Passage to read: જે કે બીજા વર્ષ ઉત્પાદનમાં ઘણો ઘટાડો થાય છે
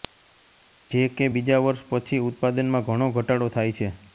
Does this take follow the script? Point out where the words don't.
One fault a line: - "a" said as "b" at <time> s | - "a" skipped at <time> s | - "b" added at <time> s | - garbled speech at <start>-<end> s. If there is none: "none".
- "પછી" added at 1.9 s